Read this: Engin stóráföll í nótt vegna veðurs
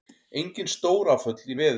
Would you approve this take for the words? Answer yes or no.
no